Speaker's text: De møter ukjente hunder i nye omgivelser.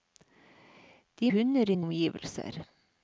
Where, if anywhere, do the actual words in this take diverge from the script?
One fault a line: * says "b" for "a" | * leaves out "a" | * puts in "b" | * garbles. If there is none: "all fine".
* leaves out "møter ukjente"
* leaves out "nye"